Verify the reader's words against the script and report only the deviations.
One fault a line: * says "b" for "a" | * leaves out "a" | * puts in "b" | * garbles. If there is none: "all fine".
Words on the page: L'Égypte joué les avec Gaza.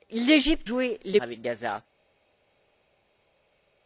all fine